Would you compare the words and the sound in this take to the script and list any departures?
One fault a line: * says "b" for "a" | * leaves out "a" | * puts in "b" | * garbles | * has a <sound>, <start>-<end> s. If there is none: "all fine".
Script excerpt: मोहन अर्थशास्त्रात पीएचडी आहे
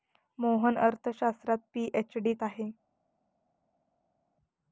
all fine